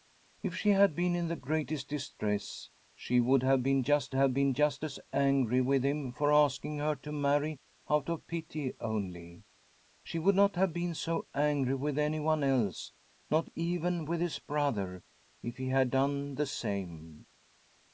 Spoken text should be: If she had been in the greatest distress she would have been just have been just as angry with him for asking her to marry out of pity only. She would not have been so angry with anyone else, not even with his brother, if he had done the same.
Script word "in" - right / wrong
right